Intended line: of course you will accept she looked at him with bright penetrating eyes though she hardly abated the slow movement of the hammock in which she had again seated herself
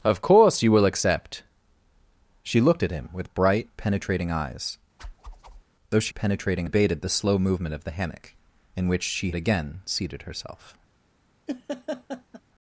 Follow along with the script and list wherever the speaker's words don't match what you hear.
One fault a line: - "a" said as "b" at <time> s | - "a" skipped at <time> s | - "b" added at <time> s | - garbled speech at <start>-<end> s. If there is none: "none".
- "hardly" said as "penetrating" at 6.1 s
- "had" skipped at 9.3 s